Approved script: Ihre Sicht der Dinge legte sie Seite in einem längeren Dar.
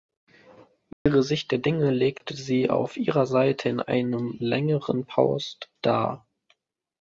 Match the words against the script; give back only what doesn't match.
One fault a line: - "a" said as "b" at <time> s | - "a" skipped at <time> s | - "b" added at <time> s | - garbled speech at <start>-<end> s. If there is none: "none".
- "auf ihrer" added at 2.7 s
- "Post" added at 5.0 s